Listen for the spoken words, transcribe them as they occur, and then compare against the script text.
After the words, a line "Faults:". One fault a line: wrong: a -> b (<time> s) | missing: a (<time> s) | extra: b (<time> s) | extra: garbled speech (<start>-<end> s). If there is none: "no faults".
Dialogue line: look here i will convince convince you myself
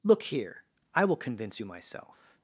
look here i will convince you myself
Faults:
missing: convince (1.6 s)